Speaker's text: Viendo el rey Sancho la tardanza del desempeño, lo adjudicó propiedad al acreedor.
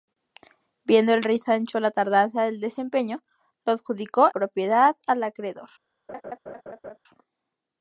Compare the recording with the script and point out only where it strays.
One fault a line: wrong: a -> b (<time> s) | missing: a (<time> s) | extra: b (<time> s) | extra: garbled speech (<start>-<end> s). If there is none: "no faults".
no faults